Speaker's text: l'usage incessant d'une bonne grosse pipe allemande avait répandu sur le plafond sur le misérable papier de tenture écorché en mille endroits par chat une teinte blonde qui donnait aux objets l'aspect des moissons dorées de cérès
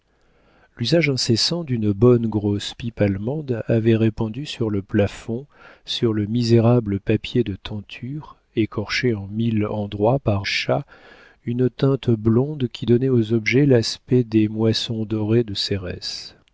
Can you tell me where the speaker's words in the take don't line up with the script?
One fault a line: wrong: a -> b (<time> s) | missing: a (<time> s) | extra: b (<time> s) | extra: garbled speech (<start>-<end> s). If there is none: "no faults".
no faults